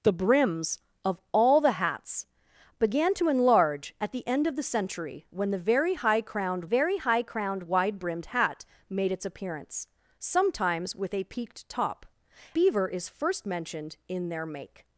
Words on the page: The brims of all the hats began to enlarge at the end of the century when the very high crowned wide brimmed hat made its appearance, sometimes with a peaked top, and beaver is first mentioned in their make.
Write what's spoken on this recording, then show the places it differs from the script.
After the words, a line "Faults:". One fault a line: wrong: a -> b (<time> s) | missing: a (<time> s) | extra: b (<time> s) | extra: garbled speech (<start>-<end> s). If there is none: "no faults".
The brims of all the hats began to enlarge at the end of the century when the very high crowned very high crowned wide brimmed hat made its appearance, sometimes with a peaked top, beaver is first mentioned in their make.
Faults:
extra: very high crowned (6.6 s)
missing: and (12.0 s)